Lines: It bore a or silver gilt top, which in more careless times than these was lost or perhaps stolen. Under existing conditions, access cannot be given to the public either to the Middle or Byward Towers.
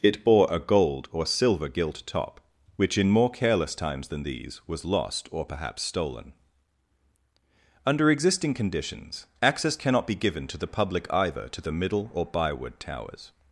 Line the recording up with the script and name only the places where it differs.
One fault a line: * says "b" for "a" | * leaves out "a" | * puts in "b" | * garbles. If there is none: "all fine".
* puts in "gold"